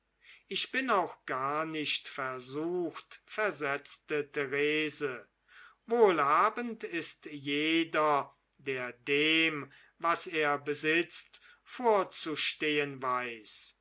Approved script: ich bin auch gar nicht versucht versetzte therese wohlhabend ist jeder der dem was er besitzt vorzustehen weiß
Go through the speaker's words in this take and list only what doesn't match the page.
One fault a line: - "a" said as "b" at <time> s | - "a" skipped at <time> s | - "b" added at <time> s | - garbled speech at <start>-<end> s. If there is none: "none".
none